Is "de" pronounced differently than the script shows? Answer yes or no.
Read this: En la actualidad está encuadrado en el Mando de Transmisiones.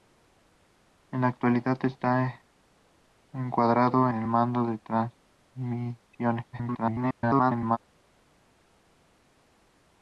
no